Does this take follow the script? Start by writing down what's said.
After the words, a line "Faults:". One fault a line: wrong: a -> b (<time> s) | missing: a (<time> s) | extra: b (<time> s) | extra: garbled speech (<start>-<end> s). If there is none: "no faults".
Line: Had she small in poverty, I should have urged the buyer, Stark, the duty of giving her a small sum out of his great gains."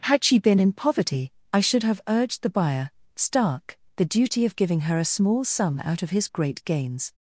Had she been in poverty, I should have urged the buyer, Stark, the duty of giving her a small sum out of his great gains."
Faults:
wrong: small -> been (0.4 s)